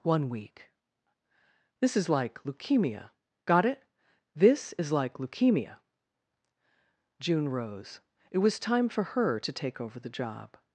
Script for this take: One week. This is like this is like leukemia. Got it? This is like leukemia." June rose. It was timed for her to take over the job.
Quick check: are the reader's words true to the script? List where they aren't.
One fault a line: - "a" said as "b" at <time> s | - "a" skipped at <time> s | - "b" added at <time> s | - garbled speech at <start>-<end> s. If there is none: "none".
- "this is like" skipped at 2.4 s
- "timed" said as "time" at 8.6 s